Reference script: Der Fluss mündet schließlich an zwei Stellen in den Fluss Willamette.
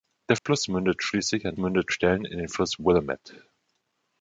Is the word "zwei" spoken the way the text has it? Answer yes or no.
no